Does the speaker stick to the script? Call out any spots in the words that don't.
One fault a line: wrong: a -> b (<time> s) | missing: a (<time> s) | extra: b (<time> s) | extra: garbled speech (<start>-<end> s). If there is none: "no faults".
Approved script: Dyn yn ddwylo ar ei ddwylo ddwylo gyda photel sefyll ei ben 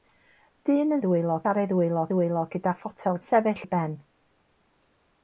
no faults